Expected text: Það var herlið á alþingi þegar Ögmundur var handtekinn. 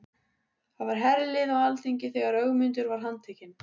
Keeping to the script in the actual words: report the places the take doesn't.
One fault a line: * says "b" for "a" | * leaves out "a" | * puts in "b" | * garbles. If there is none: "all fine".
all fine